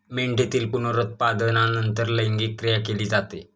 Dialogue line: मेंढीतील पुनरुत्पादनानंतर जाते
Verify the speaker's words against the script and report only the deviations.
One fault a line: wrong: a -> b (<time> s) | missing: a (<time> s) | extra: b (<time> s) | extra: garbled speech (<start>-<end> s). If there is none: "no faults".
extra: लैंगिक क्रिया केली (2.1 s)